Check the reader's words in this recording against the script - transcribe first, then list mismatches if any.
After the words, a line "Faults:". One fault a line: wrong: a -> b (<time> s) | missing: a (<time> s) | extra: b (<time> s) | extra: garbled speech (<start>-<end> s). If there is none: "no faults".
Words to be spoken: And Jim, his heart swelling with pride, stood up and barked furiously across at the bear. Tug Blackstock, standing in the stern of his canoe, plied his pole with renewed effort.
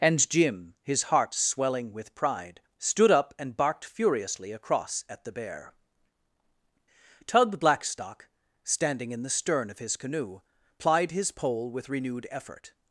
And Jim, his heart swelling with pride, stood up and barked furiously across at the bear. Tug Blackstock, standing in the stern of his canoe, plied his pole with renewed effort.
Faults:
no faults